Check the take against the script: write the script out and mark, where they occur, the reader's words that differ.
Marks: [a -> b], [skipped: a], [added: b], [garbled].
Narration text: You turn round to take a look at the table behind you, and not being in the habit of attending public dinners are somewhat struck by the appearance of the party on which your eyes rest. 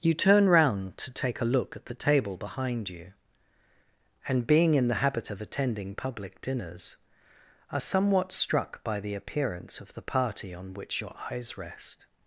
You turn round to take a look at the table behind you, and [skipped: not] being in the habit of attending public dinners are somewhat struck by the appearance of the party on which your eyes rest.